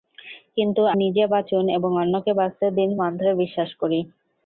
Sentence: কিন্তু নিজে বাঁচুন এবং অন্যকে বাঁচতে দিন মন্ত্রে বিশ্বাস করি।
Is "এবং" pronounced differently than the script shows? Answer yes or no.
no